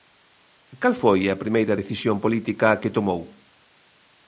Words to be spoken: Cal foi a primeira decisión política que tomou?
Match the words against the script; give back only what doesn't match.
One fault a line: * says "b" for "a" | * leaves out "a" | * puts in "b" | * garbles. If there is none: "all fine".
all fine